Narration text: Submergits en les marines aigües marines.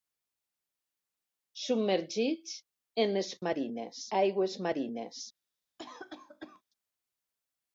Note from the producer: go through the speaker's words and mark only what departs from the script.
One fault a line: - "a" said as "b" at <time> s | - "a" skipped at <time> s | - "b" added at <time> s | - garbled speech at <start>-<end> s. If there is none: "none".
none